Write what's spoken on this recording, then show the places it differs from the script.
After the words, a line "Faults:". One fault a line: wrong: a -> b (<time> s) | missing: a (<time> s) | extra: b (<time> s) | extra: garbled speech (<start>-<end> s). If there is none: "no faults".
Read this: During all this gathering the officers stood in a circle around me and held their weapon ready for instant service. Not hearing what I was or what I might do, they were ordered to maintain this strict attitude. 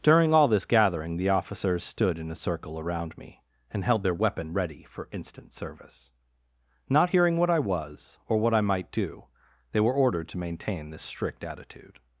During all this gathering the officers stood in a circle around me and held their weapon ready for instant service. Not hearing what I was or what I might do, they were ordered to maintain this strict attitude.
Faults:
no faults